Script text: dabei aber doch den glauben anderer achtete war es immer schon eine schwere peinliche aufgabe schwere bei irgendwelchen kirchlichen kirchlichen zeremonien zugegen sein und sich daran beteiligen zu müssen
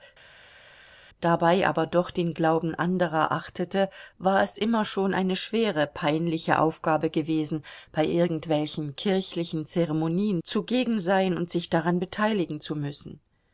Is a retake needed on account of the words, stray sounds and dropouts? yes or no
yes